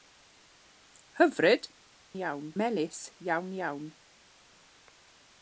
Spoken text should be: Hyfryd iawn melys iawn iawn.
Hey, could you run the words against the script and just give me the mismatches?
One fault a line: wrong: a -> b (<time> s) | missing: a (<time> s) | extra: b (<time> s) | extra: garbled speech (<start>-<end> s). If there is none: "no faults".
no faults